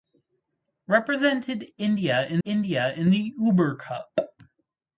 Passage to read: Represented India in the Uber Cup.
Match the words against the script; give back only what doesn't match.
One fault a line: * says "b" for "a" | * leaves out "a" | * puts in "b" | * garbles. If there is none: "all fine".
* puts in "India in"